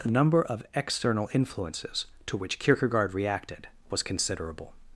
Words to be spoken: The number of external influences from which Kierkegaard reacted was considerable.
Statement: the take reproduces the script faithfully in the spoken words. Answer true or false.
false